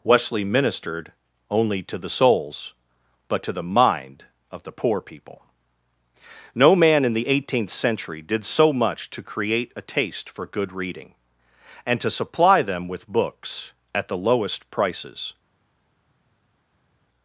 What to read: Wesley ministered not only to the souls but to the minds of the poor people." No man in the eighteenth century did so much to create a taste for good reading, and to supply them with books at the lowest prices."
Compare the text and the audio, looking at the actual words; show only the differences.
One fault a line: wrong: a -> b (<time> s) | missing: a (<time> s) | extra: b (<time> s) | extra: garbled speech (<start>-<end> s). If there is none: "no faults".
missing: not (1.1 s)
wrong: minds -> mind (3.6 s)